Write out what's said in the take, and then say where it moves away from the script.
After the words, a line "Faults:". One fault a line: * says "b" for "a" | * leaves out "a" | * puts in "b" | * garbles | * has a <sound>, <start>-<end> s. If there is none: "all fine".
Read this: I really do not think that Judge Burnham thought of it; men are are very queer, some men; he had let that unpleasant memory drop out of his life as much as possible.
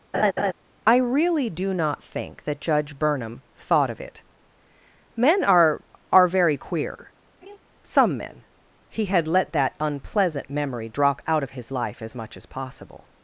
I really do not think that Judge Burnham thought of it; men are are very queer, some men; he had let that unpleasant memory drop out of his life as much as possible.
Faults:
* has a laugh, 0.1-0.5 s
* has a laugh, 7.4-7.6 s